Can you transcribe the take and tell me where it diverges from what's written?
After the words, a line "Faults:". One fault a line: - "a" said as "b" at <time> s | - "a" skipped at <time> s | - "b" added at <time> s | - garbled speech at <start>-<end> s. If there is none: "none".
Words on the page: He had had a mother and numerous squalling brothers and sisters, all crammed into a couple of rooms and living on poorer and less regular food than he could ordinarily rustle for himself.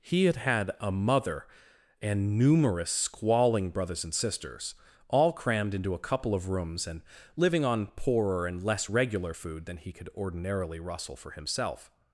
He had had a mother and numerous squalling brothers and sisters, all crammed into a couple of rooms and living on poorer and less regular food than he could ordinarily rustle for himself.
Faults:
none